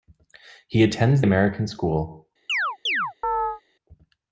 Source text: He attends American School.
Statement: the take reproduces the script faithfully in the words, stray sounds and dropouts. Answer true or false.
false